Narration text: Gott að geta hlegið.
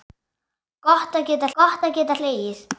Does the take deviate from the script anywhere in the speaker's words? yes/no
yes